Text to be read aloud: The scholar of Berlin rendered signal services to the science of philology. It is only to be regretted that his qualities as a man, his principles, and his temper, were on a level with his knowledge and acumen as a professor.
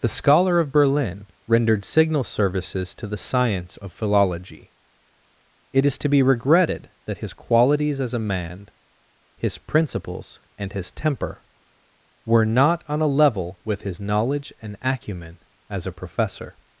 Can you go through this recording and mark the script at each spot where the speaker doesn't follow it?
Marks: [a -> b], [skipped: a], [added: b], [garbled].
The scholar of Berlin rendered signal services to the science of philology. It is [skipped: only] to be regretted that his qualities as a man, his principles, and his temper, were [added: not] on a level with his knowledge and acumen as a professor.